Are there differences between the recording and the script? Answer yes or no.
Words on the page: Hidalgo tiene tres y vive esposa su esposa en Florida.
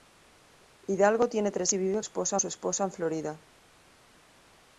no